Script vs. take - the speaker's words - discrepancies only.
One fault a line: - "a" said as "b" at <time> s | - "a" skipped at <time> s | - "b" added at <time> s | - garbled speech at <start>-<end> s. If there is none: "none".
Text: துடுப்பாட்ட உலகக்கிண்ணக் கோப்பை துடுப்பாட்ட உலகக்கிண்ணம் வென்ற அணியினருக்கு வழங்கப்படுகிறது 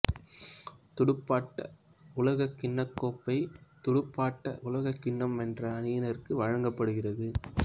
none